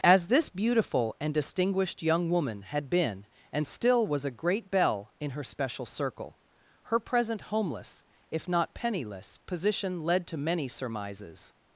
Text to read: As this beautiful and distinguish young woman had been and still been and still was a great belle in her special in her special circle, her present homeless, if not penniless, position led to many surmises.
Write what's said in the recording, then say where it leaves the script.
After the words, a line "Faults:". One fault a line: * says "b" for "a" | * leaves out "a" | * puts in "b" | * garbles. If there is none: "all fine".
As this beautiful and distinguished young woman had been and still was a great belle in her special circle, her present homeless, if not penniless, position led to many surmises.
Faults:
* says "distinguished" for "distinguish"
* leaves out "been and still"
* leaves out "in her special"